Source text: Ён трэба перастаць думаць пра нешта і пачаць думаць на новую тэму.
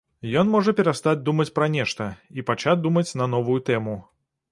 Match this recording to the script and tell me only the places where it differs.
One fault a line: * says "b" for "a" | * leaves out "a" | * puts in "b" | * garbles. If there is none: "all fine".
* says "можа" for "трэба"